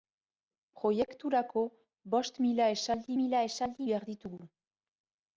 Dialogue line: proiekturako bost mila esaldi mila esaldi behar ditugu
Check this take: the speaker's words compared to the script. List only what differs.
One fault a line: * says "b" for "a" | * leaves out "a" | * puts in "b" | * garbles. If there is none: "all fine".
all fine